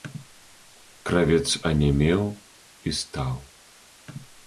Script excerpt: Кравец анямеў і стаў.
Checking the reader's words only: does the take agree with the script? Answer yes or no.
yes